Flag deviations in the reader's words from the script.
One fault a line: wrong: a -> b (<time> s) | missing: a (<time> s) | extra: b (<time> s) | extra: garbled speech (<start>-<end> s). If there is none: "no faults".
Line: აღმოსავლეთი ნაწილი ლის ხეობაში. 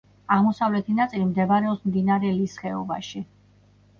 extra: მდებარეობს მდინარე (1.3 s)